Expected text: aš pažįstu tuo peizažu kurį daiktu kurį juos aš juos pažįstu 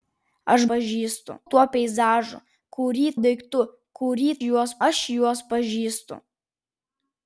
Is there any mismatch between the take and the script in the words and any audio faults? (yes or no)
no